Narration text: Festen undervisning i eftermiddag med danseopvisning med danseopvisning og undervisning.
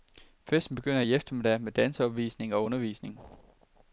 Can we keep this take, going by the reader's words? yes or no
no